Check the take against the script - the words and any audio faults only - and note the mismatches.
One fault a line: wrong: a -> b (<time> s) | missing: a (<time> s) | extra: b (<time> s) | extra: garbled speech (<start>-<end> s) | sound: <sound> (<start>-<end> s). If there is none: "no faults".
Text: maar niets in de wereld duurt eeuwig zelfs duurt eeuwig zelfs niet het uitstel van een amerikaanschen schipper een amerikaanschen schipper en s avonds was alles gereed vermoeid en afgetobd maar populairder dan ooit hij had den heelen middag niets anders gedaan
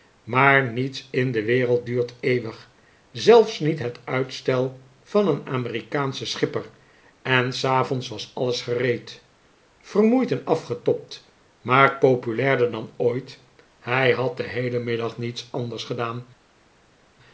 missing: duurt eeuwig zelfs (3.6 s)
missing: een amerikaanschen schipper (6.7 s)